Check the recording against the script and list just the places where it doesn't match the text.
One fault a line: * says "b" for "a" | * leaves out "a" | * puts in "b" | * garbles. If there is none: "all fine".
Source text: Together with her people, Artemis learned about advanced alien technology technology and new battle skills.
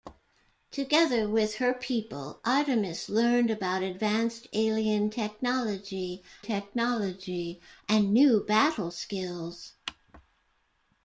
all fine